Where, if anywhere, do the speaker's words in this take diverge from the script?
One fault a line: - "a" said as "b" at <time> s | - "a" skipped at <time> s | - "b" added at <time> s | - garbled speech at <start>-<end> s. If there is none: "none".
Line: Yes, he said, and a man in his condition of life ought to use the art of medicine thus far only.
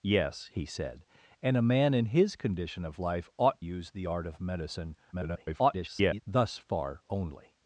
- "to" skipped at 3.6 s
- garbled speech at 5.1-6.2 s